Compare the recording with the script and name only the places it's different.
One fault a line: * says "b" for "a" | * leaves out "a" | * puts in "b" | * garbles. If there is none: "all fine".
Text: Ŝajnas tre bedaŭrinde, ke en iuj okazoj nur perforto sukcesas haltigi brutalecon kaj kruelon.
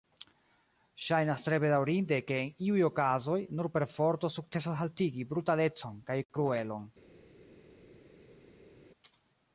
all fine